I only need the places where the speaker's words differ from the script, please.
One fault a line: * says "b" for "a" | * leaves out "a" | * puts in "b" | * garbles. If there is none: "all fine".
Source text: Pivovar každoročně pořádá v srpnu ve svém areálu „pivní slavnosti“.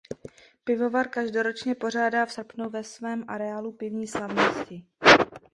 all fine